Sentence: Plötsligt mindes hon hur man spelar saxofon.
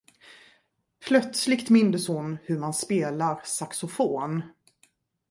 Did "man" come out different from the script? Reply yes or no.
no